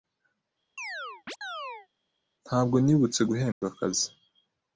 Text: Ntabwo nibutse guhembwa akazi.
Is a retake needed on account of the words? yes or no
no